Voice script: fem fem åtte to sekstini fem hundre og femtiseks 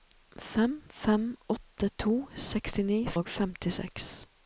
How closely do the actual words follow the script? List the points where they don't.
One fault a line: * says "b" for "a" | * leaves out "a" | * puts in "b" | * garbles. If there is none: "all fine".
* leaves out "fem hundre"